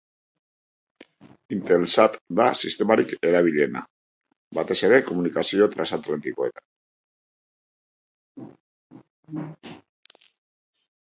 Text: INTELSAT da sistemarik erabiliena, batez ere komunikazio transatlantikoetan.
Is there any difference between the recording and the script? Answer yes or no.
no